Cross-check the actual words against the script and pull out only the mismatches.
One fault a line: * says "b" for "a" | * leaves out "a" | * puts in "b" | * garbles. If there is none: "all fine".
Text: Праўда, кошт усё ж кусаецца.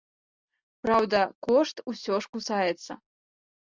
all fine